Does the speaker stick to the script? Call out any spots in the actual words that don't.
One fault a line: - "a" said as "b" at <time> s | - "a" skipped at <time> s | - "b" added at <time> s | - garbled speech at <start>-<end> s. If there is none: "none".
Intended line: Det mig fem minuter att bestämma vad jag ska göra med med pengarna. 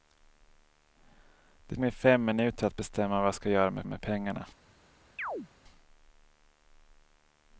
none